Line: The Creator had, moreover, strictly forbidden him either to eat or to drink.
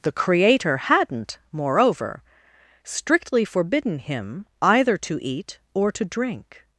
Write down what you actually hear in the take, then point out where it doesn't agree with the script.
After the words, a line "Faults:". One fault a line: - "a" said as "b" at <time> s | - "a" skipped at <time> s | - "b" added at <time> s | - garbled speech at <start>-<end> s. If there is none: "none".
The Creator hadn't, moreover, strictly forbidden him either to eat or to drink.
Faults:
- "had" said as "hadn't" at 0.8 s